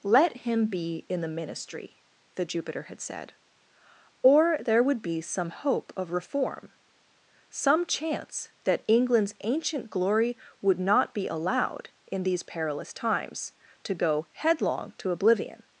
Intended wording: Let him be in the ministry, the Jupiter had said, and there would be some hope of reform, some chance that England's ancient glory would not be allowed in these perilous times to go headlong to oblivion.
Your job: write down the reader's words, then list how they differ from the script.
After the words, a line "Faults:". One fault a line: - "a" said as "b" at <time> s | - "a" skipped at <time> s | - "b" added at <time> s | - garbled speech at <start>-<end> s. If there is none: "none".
Let him be in the ministry, the Jupiter had said, or there would be some hope of reform, some chance that England's ancient glory would not be allowed in these perilous times to go headlong to oblivion.
Faults:
- "and" said as "or" at 4.2 s